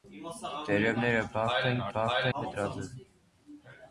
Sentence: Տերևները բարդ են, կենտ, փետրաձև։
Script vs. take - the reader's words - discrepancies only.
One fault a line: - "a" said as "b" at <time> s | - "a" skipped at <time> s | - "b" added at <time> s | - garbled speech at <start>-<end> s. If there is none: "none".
- "կենտ" said as "բարդ" at 2.0 s